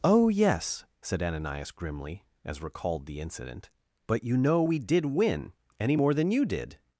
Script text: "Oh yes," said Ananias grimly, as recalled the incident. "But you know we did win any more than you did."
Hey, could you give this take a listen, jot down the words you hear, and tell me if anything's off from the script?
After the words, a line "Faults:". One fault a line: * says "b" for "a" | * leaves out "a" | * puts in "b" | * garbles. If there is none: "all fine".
"Oh yes," said Ananias grimly, as recalled the incident. "But you know we did win any more than you did."
Faults:
all fine